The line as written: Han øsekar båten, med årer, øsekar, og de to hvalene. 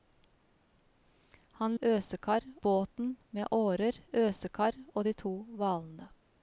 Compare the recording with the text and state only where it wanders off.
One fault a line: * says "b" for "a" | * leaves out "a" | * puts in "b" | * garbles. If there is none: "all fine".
all fine